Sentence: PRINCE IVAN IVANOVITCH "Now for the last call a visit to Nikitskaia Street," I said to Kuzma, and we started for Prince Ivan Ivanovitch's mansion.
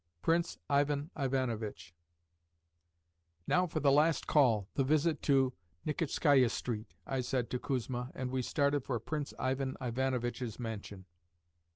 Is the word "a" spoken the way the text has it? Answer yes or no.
no